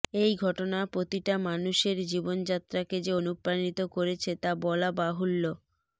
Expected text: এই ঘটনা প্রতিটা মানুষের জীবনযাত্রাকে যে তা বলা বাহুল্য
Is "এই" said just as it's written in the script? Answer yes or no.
yes